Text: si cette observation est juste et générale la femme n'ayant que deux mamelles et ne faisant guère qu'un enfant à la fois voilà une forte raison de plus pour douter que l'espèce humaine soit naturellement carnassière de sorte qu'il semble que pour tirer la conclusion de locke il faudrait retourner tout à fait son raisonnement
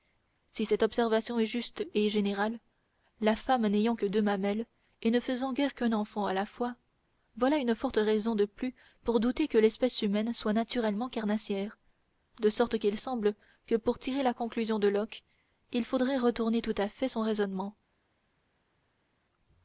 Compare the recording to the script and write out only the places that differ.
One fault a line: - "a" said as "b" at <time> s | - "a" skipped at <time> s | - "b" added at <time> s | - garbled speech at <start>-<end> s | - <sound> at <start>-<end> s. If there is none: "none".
none